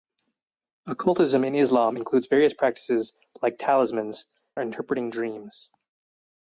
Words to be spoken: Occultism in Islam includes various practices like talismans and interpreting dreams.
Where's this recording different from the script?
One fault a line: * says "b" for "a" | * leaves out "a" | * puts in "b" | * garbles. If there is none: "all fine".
* leaves out "and"